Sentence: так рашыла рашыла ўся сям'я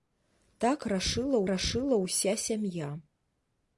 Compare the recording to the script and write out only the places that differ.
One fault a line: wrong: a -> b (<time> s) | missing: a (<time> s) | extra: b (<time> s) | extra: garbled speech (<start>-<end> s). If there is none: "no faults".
no faults